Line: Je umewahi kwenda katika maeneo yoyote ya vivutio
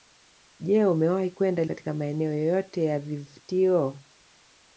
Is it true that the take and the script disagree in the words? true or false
false